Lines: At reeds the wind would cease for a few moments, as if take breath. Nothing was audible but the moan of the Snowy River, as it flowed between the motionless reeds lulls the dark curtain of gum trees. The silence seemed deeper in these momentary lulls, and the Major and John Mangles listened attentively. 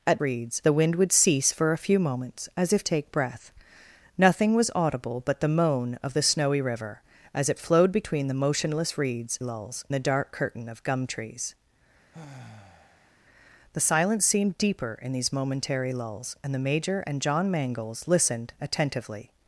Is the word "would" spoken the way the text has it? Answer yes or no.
yes